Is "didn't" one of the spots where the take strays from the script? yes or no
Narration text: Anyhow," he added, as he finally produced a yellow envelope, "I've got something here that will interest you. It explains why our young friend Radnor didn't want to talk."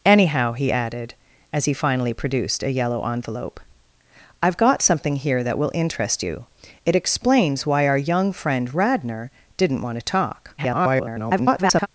no